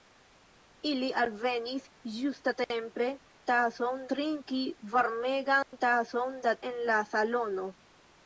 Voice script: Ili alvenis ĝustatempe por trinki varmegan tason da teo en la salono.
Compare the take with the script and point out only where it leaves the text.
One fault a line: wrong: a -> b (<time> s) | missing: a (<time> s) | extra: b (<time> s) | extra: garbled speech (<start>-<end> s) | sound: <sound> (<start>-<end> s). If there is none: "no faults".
wrong: por -> tason (3.5 s)
sound: dropout (5.6-5.7 s)
missing: teo (6.6 s)